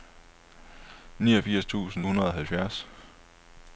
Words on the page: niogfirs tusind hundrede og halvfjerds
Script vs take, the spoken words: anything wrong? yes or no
no